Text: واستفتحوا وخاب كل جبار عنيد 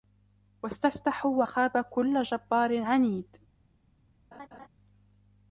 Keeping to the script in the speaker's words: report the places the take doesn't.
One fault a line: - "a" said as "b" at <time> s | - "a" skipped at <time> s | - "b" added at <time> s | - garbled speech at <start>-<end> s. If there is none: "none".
none